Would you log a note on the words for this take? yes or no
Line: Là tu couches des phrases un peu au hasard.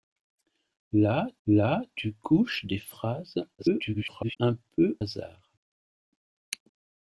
yes